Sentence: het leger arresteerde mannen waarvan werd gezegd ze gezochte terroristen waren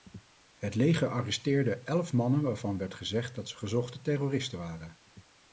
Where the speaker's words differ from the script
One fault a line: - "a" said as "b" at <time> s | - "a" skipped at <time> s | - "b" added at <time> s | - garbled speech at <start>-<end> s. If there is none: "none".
- "elf" added at 1.8 s
- "dat" added at 3.4 s